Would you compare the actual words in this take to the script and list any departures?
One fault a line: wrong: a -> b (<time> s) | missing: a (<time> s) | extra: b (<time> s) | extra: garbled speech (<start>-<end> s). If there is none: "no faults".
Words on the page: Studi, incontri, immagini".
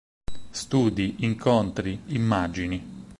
no faults